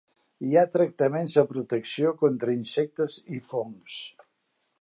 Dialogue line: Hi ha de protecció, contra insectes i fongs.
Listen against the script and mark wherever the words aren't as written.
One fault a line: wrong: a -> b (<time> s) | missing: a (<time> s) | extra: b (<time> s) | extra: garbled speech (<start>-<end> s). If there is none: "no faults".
extra: tractaments (0.8 s)